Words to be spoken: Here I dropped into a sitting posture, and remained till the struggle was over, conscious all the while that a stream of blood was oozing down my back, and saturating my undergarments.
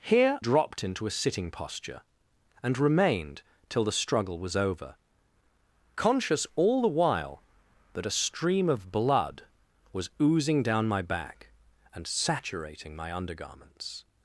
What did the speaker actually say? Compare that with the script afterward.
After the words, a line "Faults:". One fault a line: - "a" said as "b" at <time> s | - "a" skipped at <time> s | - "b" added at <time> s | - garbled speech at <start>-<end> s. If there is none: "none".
Here dropped into a sitting posture, and remained till the struggle was over, conscious all the while that a stream of blood was oozing down my back, and saturating my undergarments.
Faults:
- "I" skipped at 0.4 s